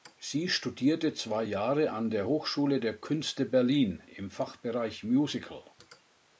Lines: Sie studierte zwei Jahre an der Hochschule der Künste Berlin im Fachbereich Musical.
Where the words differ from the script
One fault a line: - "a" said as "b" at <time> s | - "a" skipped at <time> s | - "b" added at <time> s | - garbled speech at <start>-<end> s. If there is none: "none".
none